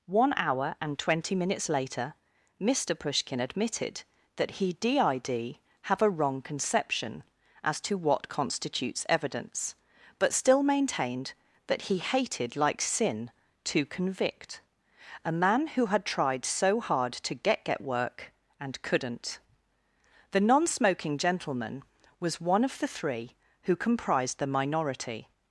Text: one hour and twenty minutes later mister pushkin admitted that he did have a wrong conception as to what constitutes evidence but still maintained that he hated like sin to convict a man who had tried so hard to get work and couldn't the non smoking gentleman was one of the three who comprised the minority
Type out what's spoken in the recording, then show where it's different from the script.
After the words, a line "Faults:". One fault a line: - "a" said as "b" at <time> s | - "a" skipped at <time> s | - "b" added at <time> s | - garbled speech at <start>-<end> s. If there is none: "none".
one hour and twenty minutes later mister pushkin admitted that he did have a wrong conception as to what constitutes evidence but still maintained that he hated like sin to convict a man who had tried so hard to get get work and couldn't the non smoking gentleman was one of the three who comprised the minority
Faults:
- "get" added at 17.6 s